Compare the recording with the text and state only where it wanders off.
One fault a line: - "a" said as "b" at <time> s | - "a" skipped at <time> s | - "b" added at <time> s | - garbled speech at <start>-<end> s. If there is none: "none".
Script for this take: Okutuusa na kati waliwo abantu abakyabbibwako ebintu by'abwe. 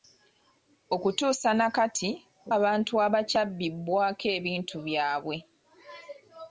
- "waliwo" skipped at 2.1 s